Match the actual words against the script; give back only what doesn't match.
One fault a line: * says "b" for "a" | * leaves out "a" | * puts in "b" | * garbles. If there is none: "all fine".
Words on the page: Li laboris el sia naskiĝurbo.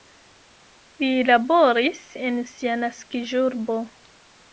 * says "en" for "el"